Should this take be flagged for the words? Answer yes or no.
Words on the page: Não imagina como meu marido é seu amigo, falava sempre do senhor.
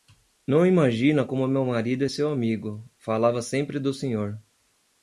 no